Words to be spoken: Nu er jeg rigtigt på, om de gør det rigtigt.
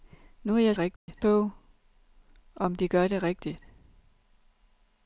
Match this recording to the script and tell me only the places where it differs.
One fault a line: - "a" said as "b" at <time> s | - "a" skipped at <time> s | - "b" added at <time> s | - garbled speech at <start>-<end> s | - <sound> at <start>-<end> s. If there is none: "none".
- dropout at 1.0-1.1 s